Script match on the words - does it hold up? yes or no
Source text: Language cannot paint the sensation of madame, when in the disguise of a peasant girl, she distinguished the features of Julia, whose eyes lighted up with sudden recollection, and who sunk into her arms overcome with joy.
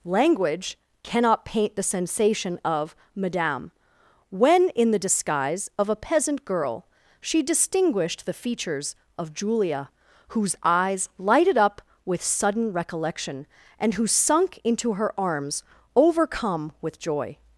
yes